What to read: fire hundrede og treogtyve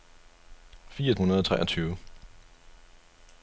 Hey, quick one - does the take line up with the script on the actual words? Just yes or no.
yes